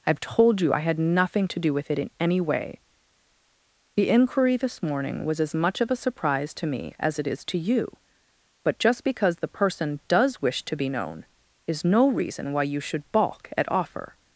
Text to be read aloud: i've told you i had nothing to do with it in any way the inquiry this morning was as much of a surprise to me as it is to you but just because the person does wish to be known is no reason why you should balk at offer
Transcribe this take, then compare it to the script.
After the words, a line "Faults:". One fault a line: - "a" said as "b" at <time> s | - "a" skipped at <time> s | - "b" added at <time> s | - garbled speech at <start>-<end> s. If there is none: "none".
i've told you i had nothing to do with it in any way the inquiry this morning was as much of a surprise to me as it is to you but just because the person does wish to be known is no reason why you should balk at offer
Faults:
none